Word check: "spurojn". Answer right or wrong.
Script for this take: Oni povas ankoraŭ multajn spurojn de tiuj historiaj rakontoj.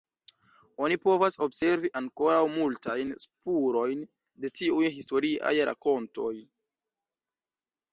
right